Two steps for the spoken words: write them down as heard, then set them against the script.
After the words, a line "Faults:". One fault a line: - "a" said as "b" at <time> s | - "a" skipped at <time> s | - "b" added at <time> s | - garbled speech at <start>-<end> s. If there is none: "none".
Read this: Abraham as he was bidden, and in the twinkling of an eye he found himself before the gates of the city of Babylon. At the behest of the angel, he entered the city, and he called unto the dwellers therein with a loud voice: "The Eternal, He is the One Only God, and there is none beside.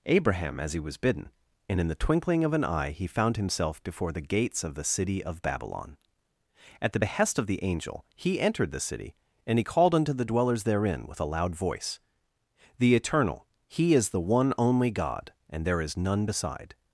Abraham as he was bidden, and in the twinkling of an eye he found himself before the gates of the city of Babylon. At the behest of the angel, he entered the city, and he called unto the dwellers therein with a loud voice: "The Eternal, He is the One Only God, and there is none beside.
Faults:
none